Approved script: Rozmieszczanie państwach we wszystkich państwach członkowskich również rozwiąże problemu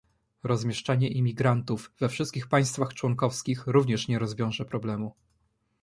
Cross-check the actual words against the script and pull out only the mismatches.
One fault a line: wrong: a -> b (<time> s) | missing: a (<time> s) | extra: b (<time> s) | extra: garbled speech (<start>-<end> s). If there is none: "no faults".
wrong: państwach -> imigrantów (1.1 s)
extra: nie (4.1 s)